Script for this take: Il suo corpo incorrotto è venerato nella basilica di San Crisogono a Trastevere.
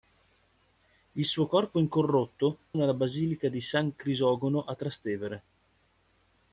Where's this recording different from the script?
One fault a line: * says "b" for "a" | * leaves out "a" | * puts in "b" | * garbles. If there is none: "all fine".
* leaves out "è venerato"